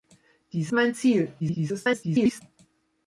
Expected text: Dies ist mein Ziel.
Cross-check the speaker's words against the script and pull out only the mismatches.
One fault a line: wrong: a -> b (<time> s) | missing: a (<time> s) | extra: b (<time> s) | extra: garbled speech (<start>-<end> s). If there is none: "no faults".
missing: ist (0.7 s)
extra: garbled speech (1.4-2.4 s)